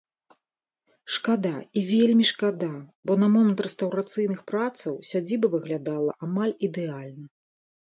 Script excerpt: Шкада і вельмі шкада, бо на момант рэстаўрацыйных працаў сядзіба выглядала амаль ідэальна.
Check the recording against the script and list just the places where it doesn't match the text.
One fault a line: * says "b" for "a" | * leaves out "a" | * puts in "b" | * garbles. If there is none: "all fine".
all fine